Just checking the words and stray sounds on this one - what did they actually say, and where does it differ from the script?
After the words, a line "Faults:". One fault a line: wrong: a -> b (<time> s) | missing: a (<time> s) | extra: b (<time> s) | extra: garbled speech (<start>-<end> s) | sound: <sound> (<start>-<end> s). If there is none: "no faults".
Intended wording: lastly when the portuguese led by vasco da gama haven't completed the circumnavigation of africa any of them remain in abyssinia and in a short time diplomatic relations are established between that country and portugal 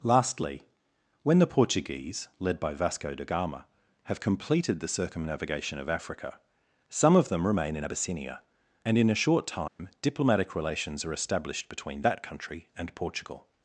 lastly when the portuguese led by vasco da gama have completed the circumnavigation of africa some of them remain in abyssinia and in a short time diplomatic relations are established between that country and portugal
Faults:
wrong: haven't -> have (4.0 s)
wrong: any -> some (6.9 s)
sound: dropout (9.7-9.8 s)